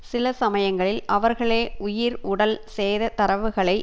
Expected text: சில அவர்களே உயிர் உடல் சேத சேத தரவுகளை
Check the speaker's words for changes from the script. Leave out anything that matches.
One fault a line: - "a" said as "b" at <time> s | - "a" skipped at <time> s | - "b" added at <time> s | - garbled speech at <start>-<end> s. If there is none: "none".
- "சமயங்களில்" added at 0.3 s
- "சேத" skipped at 3.1 s